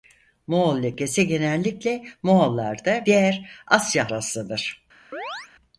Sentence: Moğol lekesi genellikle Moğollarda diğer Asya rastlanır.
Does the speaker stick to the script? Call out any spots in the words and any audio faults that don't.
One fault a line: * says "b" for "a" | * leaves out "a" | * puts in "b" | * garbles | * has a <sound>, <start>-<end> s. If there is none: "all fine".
* has a chirp, 5.1-5.5 s